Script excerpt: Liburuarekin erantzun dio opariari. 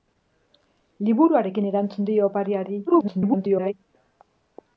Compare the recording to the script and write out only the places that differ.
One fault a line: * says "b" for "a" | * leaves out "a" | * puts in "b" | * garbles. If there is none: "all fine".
* garbles